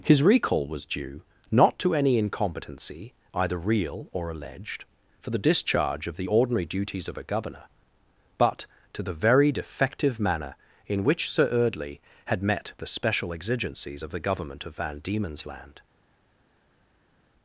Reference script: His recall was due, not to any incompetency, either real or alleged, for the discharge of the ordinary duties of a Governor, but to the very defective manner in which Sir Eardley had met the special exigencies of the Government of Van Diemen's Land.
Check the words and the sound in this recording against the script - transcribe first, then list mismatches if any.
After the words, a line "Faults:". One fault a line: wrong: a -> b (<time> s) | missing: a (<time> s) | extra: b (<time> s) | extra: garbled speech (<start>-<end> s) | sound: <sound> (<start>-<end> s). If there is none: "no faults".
His recall was due, not to any incompetency, either real or alleged, for the discharge of the ordinary duties of a Governor, but to the very defective manner in which Sir Eardley had met the special exigencies of the Government of Van Diemen's Land.
Faults:
no faults